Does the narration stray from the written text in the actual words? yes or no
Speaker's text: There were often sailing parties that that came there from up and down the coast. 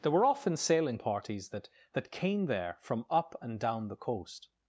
no